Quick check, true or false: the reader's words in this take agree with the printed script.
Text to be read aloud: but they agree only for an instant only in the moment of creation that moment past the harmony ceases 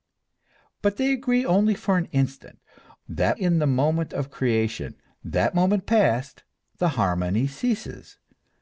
false